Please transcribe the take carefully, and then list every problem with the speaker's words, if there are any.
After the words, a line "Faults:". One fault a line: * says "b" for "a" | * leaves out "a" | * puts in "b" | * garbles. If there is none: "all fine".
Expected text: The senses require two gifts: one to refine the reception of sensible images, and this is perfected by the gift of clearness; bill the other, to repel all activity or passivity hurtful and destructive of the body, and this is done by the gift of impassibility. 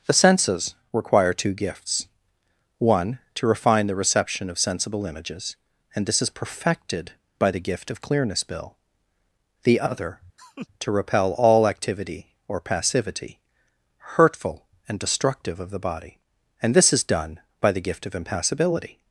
The senses require two gifts: one to refine the reception of sensible images, and this is perfected by the gift of clearness; bill the other, to repel all activity or passivity hurtful and destructive of the body, and this is done by the gift of impassibility.
Faults:
all fine